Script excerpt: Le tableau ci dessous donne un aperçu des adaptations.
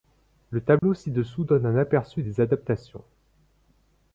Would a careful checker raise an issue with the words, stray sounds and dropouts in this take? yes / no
yes